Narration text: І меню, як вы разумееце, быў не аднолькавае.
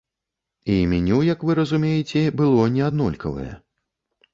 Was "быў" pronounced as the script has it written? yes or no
no